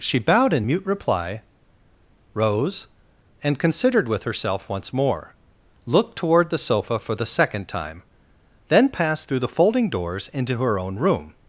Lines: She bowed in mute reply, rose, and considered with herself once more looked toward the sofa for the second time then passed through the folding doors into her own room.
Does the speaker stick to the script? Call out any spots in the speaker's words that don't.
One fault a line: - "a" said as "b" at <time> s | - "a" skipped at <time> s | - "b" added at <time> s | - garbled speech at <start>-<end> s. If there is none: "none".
none